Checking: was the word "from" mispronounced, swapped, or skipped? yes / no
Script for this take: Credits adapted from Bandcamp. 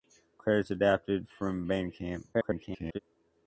no